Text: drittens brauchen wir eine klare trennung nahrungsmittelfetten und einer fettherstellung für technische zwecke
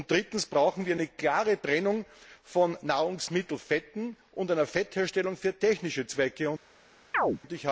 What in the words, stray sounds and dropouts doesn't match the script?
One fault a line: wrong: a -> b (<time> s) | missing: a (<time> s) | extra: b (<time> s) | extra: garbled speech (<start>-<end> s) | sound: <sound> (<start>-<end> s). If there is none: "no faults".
extra: von (2.4 s)
sound: chirp (7.1-7.4 s)